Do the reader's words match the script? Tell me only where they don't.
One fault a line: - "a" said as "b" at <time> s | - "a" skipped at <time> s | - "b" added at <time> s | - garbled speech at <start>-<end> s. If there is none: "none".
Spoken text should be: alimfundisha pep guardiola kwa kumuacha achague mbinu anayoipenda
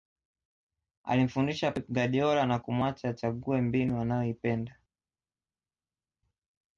- "kwa" said as "na" at 2.5 s